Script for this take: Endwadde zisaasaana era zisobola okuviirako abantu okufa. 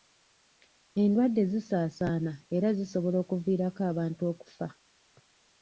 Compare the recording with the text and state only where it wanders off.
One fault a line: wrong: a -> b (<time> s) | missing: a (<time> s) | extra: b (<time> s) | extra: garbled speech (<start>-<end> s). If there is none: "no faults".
no faults